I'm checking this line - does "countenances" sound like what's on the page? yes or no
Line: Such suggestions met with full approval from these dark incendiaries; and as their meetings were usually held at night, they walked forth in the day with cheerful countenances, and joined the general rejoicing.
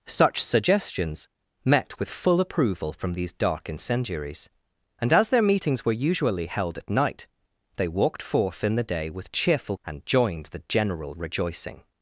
no